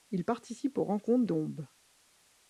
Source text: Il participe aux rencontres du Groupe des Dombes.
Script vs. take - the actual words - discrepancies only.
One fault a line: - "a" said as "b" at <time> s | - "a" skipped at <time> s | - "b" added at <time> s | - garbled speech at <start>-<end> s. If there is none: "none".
- "du Groupe des" skipped at 1.2 s